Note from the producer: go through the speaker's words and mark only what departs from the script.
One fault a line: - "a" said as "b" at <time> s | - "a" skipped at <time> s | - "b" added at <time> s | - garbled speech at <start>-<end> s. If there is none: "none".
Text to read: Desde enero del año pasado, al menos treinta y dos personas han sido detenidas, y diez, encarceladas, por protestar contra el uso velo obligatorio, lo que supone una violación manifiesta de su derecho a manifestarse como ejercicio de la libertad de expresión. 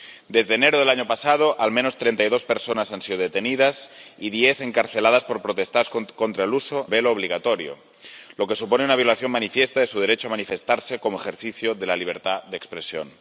none